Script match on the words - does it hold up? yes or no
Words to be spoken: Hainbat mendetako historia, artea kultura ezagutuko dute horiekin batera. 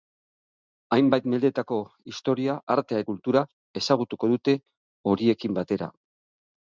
yes